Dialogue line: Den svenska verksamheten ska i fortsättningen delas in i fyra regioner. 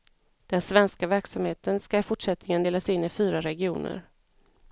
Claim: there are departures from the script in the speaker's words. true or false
false